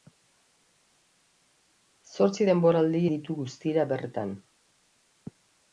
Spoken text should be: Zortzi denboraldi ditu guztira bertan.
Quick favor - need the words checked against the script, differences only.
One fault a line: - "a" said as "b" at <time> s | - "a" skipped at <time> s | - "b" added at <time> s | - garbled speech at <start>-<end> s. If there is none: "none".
none